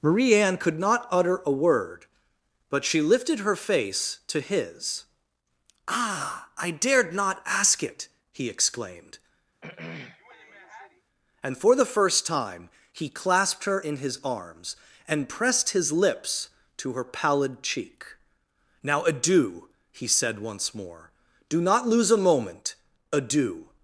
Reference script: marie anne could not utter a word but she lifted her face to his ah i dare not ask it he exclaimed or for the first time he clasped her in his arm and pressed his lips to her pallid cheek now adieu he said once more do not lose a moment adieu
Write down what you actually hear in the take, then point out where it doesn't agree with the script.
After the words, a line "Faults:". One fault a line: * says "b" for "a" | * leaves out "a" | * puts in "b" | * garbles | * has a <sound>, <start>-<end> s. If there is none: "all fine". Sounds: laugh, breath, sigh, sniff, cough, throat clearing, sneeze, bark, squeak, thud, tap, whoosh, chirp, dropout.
marie anne could not utter a word but she lifted her face to his ah i dared not ask it he exclaimed and for the first time he clasped her in his arms and pressed his lips to her pallid cheek now adieu he said once more do not lose a moment adieu
Faults:
* says "dared" for "dare"
* has a throat clearing, 9.6-11.0 s
* says "and" for "or"
* says "arms" for "arm"